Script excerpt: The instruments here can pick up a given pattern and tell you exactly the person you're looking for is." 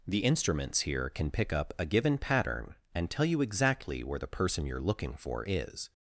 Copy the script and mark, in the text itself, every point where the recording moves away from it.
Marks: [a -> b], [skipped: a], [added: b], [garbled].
The instruments here can pick up a given pattern and tell you exactly [added: where] the person you're looking for is."